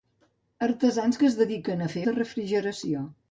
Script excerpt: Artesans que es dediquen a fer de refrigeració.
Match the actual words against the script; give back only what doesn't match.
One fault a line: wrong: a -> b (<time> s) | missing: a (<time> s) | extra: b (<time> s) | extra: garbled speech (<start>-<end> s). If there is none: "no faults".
no faults